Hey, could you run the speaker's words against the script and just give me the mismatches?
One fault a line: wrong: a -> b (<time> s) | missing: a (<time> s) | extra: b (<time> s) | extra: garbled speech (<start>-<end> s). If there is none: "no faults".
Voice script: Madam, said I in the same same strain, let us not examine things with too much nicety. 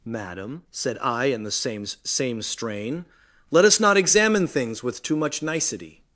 no faults